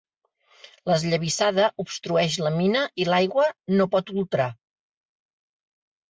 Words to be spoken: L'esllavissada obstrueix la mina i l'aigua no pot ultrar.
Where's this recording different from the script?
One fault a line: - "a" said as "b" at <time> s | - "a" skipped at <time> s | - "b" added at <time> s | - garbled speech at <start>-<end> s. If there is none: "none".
none